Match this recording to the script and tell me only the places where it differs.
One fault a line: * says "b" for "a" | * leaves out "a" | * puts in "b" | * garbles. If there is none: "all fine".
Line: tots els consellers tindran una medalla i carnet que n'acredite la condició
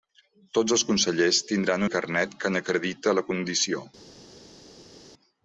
* leaves out "una medalla"